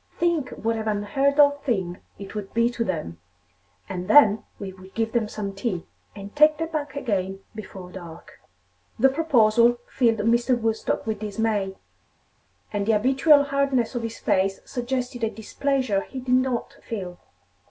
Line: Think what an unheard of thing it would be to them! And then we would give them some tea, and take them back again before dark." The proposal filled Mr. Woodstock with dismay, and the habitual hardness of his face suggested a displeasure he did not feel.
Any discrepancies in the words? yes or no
no